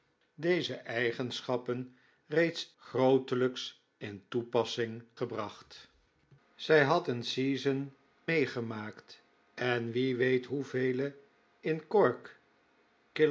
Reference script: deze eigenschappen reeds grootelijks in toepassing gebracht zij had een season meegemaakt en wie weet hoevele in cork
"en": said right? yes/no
yes